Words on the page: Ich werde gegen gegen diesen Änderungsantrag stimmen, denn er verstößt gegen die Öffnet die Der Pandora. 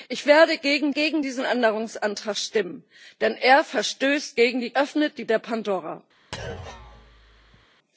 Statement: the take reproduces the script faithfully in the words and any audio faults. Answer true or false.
false